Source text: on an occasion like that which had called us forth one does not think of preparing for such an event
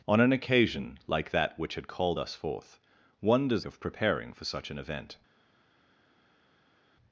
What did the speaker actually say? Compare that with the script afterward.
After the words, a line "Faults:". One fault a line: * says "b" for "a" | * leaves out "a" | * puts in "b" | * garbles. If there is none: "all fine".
on an occasion like that which had called us forth one does of preparing for such an event
Faults:
* leaves out "not think"